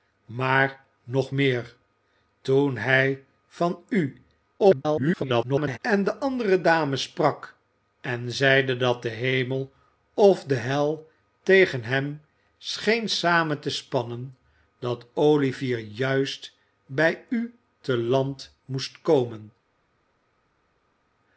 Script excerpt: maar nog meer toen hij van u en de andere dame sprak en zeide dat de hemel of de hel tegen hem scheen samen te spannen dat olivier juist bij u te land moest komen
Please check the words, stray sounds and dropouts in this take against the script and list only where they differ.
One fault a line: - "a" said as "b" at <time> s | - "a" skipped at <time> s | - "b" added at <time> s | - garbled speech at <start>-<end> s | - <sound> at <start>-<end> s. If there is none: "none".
- garbled speech at 4.6-5.8 s